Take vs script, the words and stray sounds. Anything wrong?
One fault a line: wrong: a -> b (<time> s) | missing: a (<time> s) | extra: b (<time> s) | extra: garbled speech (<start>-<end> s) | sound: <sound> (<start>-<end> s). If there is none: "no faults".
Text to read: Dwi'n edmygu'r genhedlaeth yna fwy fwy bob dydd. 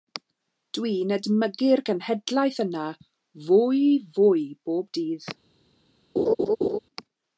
sound: laugh (6.2-6.8 s)